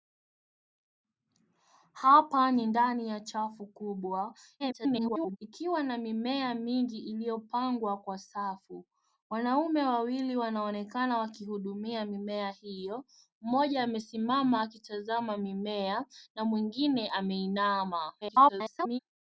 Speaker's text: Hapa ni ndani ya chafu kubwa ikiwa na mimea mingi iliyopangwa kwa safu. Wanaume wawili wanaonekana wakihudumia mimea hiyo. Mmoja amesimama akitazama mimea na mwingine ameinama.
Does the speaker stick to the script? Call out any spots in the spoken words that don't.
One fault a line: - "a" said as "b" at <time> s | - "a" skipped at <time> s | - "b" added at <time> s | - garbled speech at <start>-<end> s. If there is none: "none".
- garbled speech at 4.6-5.4 s
- garbled speech at 18.2-19.0 s